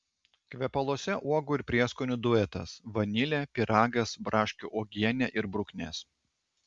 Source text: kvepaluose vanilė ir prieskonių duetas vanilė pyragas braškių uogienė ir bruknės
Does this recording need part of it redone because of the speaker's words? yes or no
yes